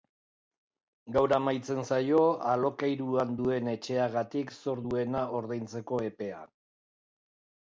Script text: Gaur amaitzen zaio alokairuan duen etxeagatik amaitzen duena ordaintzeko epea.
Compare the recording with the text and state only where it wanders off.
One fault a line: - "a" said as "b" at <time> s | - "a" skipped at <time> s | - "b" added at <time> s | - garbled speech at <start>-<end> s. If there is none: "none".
- "amaitzen" said as "zor" at 4.6 s